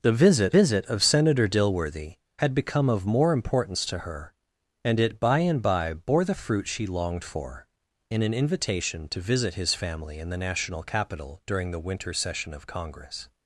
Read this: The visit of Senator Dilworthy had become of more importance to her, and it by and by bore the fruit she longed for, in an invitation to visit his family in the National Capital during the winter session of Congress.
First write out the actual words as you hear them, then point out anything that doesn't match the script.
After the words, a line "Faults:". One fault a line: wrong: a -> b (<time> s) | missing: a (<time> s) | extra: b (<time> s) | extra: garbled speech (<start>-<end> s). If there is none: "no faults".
The visit visit of Senator Dilworthy had become of more importance to her, and it by and by bore the fruit she longed for, in an invitation to visit his family in the National Capital during the winter session of Congress.
Faults:
extra: visit (0.6 s)